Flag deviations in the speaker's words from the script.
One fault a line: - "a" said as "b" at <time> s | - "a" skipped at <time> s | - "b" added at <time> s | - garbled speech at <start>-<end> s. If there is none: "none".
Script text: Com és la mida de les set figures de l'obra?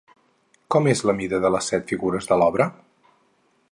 none